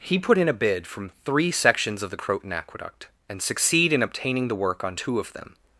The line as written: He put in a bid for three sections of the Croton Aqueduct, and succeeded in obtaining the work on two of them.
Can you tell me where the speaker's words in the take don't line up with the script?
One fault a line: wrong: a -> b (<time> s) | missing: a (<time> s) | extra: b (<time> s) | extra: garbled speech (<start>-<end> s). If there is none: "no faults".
wrong: for -> from (0.9 s)
wrong: succeeded -> succeed (3.4 s)